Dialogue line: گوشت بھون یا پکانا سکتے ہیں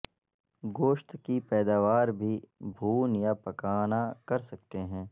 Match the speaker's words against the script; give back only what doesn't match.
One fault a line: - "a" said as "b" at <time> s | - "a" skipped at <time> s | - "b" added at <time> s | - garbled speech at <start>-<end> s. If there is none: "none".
- "کی پیداوار بھی" added at 1.2 s
- "کر" added at 4.3 s